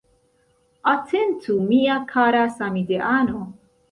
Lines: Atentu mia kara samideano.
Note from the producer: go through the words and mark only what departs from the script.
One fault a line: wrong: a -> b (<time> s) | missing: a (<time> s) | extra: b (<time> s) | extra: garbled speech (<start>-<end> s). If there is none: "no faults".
no faults